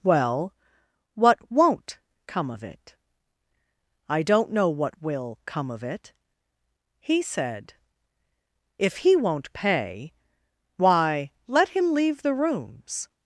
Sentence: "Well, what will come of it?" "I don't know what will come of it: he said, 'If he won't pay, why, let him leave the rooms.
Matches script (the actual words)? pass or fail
fail